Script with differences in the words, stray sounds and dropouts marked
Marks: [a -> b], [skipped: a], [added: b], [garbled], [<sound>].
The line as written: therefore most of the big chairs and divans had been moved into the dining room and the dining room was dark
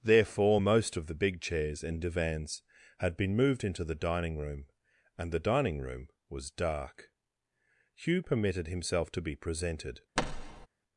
therefore most of the big chairs and divans had been moved into the dining room and the dining room was dark [added: hugh permitted himself to be presented] [thud]